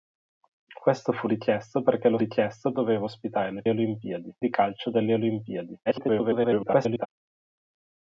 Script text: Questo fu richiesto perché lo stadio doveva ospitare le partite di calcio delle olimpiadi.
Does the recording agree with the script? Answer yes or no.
no